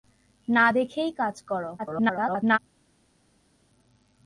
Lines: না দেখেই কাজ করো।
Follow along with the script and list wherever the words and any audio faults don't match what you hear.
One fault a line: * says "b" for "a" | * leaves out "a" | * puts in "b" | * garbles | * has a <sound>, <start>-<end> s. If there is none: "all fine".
* garbles